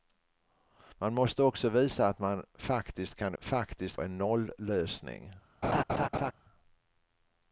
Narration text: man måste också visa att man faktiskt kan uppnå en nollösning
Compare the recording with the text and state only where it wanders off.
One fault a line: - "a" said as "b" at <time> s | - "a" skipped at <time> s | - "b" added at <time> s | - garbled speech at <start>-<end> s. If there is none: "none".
- "uppnå" said as "faktiskt" at 3.4 s